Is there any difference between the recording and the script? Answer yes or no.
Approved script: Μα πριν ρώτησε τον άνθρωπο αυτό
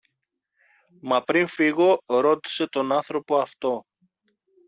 yes